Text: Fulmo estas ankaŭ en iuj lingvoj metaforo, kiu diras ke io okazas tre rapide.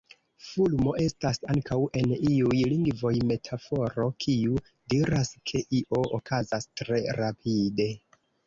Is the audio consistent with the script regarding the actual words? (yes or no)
yes